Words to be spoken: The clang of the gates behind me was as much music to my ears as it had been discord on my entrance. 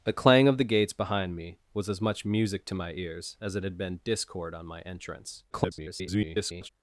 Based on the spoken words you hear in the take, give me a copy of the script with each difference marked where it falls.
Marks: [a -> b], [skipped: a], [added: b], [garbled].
The clang of the gates behind me was as much music to my ears as it had been discord on my entrance. [garbled]